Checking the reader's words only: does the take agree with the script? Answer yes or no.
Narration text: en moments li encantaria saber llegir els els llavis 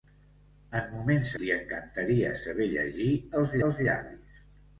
yes